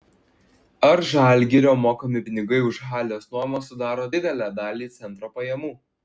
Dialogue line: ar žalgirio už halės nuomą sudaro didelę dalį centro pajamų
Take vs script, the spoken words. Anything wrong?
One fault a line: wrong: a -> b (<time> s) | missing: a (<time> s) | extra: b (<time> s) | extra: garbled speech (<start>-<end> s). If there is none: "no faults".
extra: mokami pinigai (1.9 s)